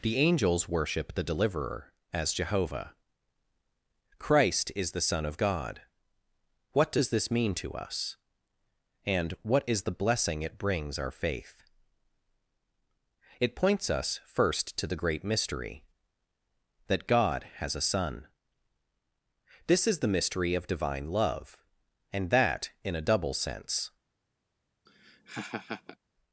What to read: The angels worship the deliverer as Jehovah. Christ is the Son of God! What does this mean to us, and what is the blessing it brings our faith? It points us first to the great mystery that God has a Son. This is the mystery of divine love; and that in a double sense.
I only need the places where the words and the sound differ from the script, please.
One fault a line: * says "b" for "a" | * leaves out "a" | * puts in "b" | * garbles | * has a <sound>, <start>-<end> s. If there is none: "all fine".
* has a laugh, 24.9-26.0 s